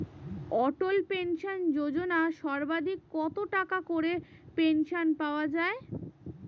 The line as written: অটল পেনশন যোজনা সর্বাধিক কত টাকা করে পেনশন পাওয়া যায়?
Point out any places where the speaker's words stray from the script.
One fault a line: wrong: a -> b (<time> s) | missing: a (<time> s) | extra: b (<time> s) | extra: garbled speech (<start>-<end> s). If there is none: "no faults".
no faults